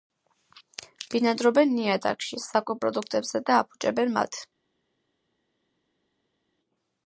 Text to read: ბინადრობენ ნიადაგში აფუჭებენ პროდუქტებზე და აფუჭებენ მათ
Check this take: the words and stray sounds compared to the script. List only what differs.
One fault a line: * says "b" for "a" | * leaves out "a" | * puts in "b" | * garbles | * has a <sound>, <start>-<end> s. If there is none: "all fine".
* says "საკვებ" for "აფუჭებენ"